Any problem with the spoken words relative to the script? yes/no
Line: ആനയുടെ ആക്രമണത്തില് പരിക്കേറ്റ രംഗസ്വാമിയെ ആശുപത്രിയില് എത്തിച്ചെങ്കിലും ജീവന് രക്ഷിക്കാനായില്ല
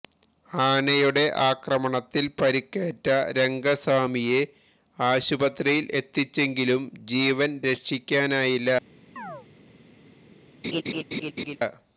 no